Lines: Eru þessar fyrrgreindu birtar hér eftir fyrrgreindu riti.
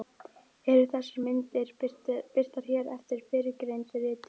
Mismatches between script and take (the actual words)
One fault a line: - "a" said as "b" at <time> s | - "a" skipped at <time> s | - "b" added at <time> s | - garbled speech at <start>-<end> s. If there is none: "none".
- "fyrrgreindu" said as "myndir" at 1.3 s